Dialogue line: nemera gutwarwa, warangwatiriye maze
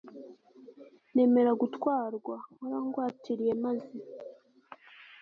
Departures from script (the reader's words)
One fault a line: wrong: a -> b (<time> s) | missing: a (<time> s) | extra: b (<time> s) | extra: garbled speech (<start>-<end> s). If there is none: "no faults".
no faults